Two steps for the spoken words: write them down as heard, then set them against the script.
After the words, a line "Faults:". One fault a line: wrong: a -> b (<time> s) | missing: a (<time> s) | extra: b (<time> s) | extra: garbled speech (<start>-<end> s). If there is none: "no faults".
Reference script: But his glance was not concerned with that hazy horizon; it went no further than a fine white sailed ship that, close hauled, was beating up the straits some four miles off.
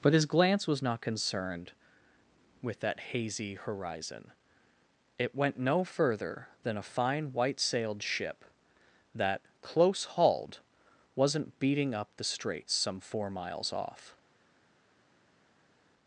But his glance was not concerned with that hazy horizon; it went no further than a fine white sailed ship that, close hauled, wasn't beating up the straits some four miles off.
Faults:
wrong: was -> wasn't (11.2 s)